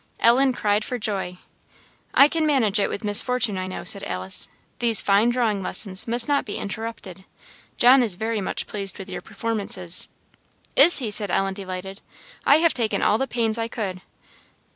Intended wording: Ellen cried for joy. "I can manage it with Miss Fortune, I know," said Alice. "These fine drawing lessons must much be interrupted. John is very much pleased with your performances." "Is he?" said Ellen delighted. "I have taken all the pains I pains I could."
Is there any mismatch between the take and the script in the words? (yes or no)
yes